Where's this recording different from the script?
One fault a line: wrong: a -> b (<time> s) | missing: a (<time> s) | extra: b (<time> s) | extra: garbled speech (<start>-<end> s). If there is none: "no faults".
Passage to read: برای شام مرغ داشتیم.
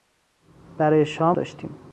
missing: مرغ (1.4 s)